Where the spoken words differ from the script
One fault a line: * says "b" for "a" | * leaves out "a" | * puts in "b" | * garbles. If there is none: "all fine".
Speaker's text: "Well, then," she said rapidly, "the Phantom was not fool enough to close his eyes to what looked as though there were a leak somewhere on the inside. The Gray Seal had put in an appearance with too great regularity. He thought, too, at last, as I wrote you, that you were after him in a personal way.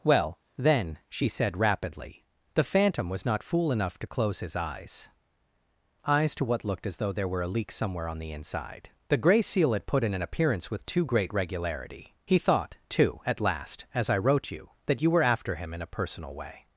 * puts in "eyes"